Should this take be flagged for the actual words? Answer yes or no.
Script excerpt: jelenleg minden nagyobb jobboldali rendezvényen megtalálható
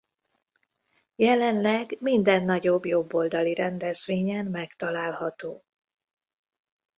no